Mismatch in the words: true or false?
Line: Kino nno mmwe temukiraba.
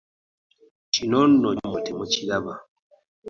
false